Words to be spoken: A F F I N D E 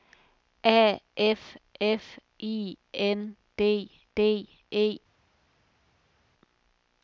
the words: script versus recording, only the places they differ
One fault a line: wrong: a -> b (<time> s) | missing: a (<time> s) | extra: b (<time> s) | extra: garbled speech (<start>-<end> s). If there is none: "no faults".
extra: D (4.1 s)